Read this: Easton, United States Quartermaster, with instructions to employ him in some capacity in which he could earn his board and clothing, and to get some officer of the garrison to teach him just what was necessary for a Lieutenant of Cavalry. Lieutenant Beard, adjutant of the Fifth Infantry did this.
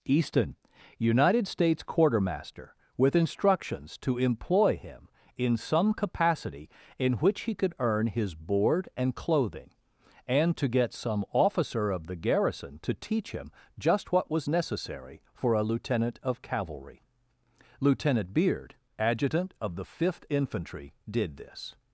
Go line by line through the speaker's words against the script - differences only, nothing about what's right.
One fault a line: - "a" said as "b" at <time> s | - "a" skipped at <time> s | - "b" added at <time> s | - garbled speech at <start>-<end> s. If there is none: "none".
none